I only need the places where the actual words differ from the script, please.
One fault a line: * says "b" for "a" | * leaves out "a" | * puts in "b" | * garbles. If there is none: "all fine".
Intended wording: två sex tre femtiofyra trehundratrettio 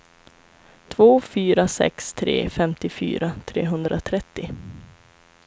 * puts in "fyra"